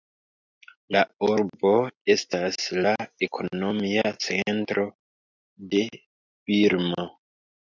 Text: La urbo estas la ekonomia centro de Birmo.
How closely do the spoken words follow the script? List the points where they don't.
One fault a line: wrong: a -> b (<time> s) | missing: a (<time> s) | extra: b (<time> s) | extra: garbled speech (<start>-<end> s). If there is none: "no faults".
no faults